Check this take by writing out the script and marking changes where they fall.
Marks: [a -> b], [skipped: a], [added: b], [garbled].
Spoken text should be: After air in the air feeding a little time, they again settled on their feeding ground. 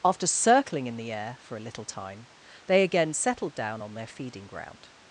After [air -> circling] in the air [feeding -> for] a little time, they again settled [added: down] on their feeding ground.